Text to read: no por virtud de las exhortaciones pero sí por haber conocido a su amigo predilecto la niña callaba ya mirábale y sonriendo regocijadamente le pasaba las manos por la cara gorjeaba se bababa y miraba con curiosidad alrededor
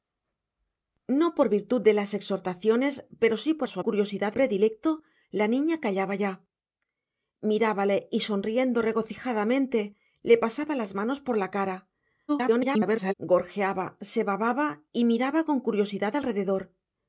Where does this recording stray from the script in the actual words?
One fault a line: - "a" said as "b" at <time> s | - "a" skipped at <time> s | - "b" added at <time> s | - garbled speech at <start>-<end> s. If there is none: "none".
- "haber conocido" skipped at 3.7 s
- "amigo" said as "curiosidad" at 3.8 s
- garbled speech at 12.3-13.1 s